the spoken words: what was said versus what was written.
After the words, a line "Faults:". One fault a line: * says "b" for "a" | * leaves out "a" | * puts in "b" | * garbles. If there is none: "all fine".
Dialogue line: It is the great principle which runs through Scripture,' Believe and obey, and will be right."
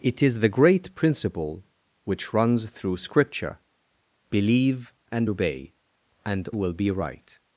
It is the great principle which runs through Scripture,' Believe and obey, and will be right."
Faults:
all fine